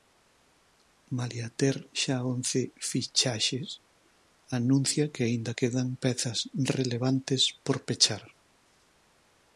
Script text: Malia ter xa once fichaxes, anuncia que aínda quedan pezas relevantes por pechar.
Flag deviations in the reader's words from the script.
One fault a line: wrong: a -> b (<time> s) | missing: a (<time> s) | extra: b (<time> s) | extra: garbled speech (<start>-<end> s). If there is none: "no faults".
no faults